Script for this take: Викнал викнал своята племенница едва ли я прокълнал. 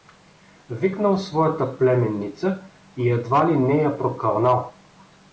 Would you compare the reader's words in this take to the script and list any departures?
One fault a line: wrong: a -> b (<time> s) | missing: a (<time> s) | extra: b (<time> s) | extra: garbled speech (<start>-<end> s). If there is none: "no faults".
missing: викнал (1.2 s)
extra: и (3.0 s)
extra: не (3.6 s)